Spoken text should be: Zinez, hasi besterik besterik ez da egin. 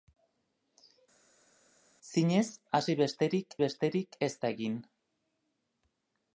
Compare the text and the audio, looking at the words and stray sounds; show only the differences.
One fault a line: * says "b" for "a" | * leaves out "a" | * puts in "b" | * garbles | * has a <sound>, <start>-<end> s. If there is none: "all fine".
all fine